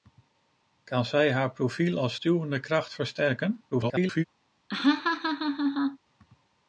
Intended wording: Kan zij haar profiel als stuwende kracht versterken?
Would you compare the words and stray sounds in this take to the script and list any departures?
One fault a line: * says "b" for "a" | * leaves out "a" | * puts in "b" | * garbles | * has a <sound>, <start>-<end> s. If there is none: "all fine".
* garbles
* has a laugh, 4.7-6.0 s